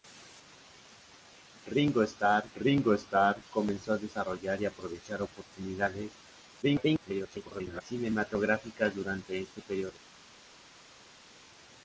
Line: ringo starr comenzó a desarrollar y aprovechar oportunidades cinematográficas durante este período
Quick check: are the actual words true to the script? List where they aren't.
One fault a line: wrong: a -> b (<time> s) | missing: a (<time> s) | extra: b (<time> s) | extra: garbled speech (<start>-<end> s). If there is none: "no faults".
extra: ringo starr (2.6 s)
extra: garbled speech (6.6-7.8 s)